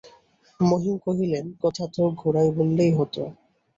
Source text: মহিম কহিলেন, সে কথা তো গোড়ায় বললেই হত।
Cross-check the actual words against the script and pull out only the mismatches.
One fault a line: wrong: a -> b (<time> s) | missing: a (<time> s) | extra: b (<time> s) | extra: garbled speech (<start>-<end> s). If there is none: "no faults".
missing: সে (1.5 s)